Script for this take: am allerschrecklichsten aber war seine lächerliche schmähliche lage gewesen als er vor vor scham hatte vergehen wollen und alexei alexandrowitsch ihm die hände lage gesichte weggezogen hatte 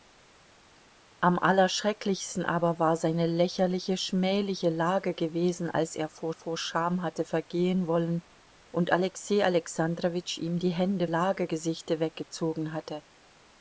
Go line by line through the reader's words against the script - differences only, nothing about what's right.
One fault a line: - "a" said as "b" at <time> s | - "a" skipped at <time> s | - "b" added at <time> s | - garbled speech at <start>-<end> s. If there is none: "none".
none